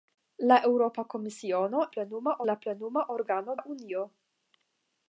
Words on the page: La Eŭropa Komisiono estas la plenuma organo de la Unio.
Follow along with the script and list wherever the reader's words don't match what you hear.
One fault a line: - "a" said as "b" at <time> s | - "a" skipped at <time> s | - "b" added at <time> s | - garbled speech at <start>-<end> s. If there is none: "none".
- "estas" said as "plenuma" at 2.0 s
- "de" skipped at 3.6 s